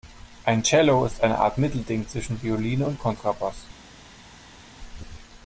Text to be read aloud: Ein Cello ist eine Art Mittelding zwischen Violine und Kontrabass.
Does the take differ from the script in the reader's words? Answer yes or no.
no